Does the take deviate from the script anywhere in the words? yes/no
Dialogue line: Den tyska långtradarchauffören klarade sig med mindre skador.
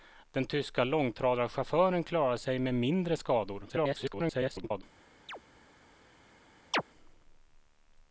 yes